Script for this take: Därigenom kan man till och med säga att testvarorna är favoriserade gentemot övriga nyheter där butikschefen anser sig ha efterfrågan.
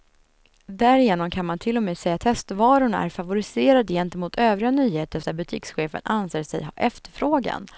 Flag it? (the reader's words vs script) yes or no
no